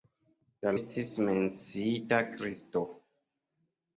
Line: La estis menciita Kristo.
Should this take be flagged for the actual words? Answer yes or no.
no